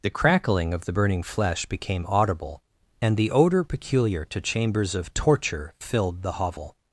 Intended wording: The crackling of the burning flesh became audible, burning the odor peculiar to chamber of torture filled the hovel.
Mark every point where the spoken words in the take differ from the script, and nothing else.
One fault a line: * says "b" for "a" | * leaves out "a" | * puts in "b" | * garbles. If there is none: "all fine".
* says "and" for "burning"
* says "chambers" for "chamber"